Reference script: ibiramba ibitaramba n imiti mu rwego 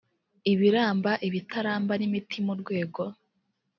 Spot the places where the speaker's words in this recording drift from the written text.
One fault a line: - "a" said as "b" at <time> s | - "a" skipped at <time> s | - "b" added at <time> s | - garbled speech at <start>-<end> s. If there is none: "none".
none